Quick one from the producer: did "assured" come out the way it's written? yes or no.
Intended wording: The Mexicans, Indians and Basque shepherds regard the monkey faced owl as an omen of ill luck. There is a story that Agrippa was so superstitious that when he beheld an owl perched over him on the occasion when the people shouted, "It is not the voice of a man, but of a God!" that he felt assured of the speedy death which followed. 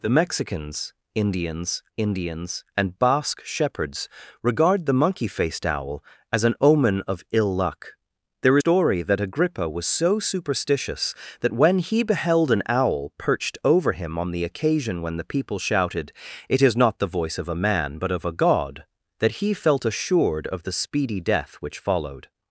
yes